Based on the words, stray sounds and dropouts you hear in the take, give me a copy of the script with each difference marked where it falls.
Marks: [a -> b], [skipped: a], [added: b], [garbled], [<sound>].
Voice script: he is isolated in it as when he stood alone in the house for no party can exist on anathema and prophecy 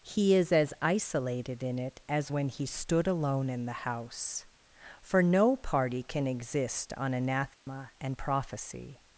he is [added: as] isolated in it as when he stood alone in the house for no party can exist on anathema [dropout] and prophecy